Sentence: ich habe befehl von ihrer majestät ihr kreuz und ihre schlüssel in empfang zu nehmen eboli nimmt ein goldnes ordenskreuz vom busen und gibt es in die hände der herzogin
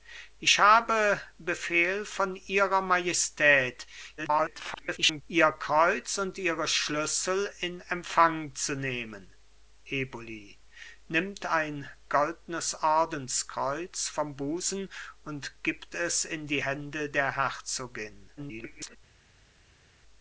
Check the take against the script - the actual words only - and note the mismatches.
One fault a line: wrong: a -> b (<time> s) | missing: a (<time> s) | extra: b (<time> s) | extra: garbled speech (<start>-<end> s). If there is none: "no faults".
extra: garbled speech (4.2-5.2 s)
extra: garbled speech (18.4-19.0 s)